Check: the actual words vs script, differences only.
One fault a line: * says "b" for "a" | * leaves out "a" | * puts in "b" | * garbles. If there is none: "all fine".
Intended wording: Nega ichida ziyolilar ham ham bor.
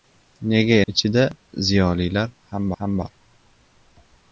all fine